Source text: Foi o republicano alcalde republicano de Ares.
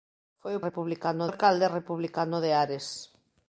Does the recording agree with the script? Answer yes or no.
yes